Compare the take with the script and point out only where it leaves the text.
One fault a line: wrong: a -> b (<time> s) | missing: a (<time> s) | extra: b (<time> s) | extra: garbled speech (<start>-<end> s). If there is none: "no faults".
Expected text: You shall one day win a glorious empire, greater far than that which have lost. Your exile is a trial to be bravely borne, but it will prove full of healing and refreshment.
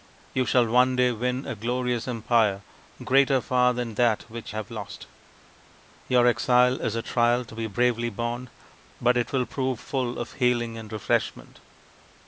no faults